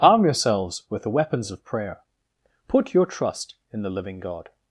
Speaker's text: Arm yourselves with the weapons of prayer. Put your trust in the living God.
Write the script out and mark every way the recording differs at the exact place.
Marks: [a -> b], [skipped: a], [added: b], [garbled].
Arm yourselves with the weapons of prayer. Put your trust in the living God.